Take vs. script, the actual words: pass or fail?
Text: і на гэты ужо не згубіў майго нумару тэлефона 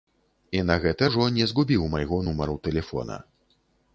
pass